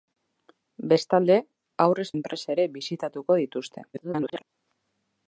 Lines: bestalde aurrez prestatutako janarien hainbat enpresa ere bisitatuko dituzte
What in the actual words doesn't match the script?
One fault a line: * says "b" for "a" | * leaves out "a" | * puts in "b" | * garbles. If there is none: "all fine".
* leaves out "prestatutako janarien hainbat"
* garbles